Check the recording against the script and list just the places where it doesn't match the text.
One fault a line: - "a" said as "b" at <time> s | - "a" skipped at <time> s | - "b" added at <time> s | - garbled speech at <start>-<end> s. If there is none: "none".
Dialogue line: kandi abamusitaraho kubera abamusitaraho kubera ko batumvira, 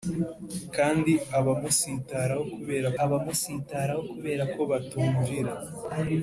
none